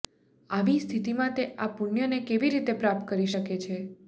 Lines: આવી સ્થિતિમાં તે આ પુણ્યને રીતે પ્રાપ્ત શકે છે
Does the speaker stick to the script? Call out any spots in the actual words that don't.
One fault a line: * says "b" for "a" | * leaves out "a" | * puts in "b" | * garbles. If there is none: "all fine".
* puts in "કેવી"
* puts in "કરી"